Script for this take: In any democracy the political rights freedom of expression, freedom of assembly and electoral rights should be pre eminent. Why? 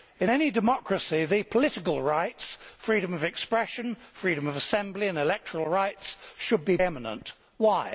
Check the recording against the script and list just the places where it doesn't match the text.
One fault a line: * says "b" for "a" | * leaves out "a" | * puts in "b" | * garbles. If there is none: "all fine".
* leaves out "pre"